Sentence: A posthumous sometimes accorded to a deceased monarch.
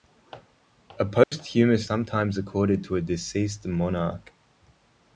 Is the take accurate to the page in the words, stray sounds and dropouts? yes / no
no